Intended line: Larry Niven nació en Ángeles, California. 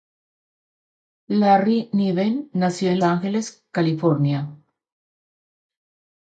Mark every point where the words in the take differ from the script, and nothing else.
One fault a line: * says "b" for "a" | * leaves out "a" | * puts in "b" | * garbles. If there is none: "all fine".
all fine